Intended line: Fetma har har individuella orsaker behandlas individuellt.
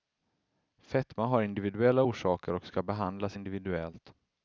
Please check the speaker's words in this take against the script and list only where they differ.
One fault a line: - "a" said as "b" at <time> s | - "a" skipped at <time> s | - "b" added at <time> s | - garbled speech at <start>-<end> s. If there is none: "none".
- "har" skipped at 1.4 s
- "och ska" added at 2.5 s